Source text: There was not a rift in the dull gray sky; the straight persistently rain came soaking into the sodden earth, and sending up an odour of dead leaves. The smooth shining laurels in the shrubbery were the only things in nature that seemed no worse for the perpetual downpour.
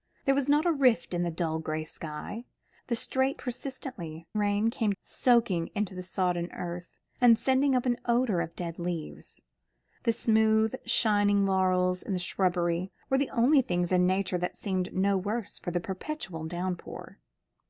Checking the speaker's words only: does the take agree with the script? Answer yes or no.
yes